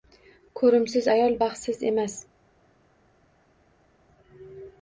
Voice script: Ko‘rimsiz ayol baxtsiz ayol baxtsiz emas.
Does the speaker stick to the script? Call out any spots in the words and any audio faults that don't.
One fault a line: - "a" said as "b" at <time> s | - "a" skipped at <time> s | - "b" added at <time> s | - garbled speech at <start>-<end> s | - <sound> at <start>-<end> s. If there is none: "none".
- "ayol baxtsiz" skipped at 1.9 s